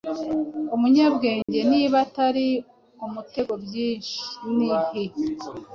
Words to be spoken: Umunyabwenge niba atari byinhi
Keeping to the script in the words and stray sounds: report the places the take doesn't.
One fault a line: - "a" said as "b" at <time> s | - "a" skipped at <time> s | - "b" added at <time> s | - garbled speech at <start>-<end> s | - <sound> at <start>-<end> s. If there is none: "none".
- dropout at 1.4-1.5 s
- "umutego" added at 3.1 s